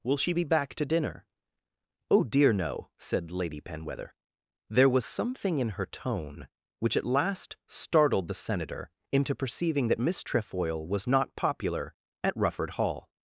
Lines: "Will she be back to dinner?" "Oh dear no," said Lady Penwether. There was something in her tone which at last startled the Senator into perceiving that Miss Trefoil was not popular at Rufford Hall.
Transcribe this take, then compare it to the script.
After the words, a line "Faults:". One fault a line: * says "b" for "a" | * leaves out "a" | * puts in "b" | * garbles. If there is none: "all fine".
"Will she be back to dinner?" "Oh dear no," said Lady Penwether. There was something in her tone which at last startled the Senator into perceiving that Miss Trefoil was not popular at Rufford Hall.
Faults:
all fine